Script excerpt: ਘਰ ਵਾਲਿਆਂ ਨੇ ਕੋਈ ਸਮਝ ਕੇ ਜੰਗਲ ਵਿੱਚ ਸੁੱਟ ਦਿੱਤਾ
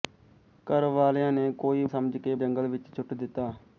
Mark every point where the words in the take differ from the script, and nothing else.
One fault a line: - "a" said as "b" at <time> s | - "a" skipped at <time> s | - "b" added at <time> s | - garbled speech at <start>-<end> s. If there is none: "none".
none